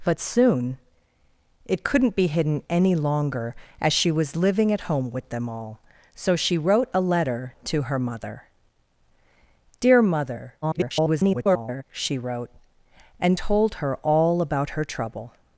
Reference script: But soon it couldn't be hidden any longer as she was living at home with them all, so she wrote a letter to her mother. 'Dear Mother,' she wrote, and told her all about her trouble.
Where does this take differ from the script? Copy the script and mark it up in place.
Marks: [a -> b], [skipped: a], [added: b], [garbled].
But soon it couldn't be hidden any longer as she was living at home with them all, so she wrote a letter to her mother. 'Dear Mother,' [garbled] she wrote, and told her all about her trouble.